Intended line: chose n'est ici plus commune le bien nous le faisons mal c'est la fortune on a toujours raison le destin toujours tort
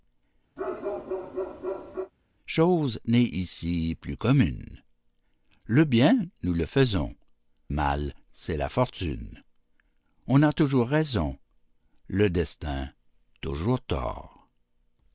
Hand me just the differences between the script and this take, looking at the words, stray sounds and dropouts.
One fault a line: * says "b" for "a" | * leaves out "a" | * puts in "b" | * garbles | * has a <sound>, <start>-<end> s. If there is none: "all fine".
* has a bark, 0.6-2.1 s